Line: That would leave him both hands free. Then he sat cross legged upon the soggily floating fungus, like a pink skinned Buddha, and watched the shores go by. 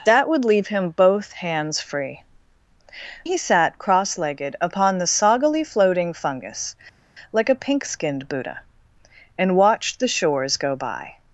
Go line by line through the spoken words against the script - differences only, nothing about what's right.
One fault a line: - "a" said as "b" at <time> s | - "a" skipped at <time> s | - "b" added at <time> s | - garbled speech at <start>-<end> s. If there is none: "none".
- "Then" skipped at 2.2 s